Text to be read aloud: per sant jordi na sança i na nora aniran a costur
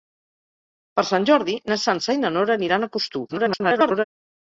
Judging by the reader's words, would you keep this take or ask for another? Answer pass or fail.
fail